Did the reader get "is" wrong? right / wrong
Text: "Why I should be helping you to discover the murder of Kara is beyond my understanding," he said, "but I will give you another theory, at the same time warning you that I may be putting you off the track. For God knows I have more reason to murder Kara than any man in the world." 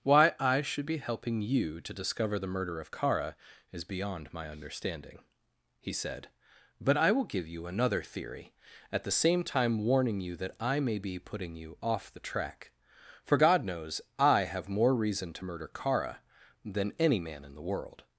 right